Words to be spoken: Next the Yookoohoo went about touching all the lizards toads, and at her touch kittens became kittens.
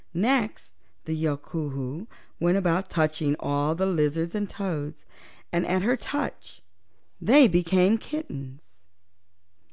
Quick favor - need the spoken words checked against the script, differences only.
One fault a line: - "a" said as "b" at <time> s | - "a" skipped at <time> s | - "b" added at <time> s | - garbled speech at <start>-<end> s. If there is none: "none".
- "and" added at 4.3 s
- "kittens" said as "they" at 7.2 s